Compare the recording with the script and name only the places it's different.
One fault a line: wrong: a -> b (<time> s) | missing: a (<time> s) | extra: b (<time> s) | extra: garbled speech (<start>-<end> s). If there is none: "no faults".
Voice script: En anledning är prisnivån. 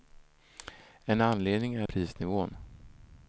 no faults